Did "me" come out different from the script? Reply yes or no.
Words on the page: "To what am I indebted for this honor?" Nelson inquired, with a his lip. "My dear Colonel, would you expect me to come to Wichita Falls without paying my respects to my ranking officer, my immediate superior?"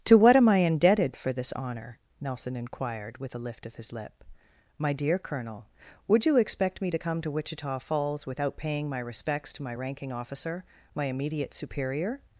no